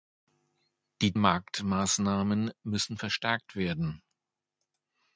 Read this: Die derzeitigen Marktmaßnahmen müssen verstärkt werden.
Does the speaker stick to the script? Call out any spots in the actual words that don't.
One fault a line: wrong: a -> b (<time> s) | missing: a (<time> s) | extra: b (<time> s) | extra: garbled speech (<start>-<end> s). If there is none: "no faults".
missing: derzeitigen (1.1 s)